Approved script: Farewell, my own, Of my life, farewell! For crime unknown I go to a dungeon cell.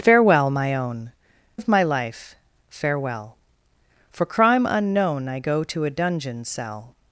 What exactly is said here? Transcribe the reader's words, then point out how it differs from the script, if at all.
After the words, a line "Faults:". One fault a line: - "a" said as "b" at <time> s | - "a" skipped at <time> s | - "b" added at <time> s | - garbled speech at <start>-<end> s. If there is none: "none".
Farewell, my own, Of my life, farewell! For crime unknown I go to a dungeon cell.
Faults:
none